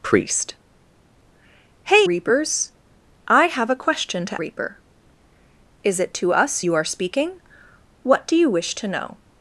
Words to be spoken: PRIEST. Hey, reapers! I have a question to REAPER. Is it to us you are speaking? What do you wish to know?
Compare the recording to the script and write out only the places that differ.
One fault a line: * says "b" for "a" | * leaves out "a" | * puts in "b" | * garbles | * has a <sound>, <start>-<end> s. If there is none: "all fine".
all fine